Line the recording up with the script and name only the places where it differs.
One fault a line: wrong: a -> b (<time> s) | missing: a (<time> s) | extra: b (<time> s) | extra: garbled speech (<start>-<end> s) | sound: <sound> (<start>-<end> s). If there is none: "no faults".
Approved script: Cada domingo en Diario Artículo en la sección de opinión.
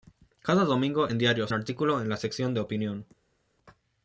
no faults